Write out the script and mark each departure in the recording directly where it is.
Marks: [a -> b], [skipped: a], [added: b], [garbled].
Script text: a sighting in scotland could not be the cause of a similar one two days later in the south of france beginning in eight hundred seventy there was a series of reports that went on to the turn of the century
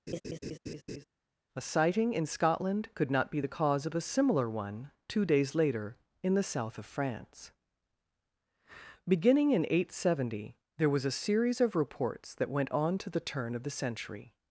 a sighting in scotland could not be the cause of a similar one two days later in the south of france beginning in eight hundred seventy there was a series of reports that went on to the turn of the century